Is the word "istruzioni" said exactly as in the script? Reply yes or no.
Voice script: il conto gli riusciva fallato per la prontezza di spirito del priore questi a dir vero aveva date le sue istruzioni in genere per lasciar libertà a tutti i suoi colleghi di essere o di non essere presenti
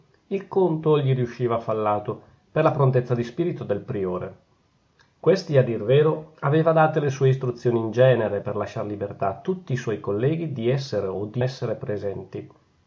yes